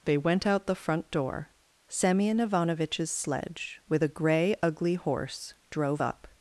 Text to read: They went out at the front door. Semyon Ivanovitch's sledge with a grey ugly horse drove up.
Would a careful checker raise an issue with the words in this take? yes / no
yes